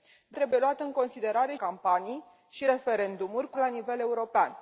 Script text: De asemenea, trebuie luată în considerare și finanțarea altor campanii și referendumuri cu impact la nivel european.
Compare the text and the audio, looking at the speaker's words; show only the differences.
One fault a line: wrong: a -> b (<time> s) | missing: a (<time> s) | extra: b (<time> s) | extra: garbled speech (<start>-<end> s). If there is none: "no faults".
missing: asemenea (0.4 s)
missing: și finanțarea altor (1.5 s)
missing: impact (3.6 s)